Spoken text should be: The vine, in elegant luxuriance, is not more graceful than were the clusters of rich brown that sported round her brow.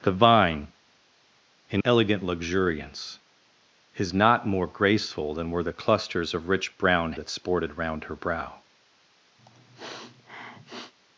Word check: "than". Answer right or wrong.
right